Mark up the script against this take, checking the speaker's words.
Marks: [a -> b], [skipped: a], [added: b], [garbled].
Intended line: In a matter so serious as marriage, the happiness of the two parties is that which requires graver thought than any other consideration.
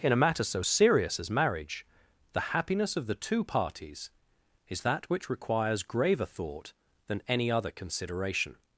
In a matter so serious as marriage, the happiness of the two parties is that which requires graver thought than any other consideration.